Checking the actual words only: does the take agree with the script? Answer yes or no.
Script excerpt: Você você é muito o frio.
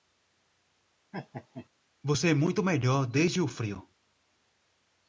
no